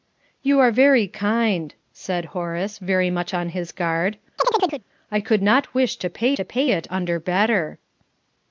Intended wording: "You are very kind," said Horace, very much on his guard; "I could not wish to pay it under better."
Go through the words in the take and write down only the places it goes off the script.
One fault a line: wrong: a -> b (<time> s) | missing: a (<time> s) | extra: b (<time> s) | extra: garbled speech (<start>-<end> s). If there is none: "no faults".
extra: to pay (6.3 s)